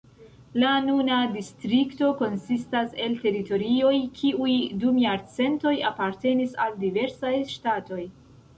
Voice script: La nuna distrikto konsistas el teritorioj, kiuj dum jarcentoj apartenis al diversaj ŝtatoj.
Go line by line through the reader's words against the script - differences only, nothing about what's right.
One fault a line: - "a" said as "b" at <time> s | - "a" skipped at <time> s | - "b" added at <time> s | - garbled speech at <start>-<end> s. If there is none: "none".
none